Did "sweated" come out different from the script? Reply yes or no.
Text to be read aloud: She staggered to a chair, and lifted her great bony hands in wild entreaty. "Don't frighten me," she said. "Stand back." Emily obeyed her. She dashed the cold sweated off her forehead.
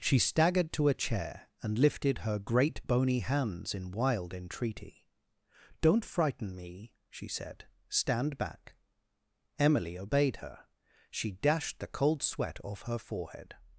yes